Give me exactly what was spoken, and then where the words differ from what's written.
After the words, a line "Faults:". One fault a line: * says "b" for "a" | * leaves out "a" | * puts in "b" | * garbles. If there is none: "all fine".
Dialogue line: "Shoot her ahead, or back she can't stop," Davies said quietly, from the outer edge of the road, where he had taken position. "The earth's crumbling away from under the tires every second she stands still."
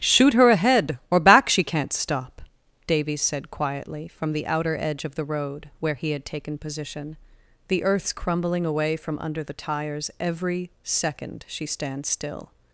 "Shoot her ahead, or back she can't stop," Davies said quietly, from the outer edge of the road, where he had taken position. "The earth's crumbling away from under the tires every second she stands still."
Faults:
all fine